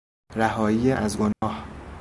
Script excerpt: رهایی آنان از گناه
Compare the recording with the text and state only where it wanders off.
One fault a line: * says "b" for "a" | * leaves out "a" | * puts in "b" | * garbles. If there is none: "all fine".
* leaves out "آنان"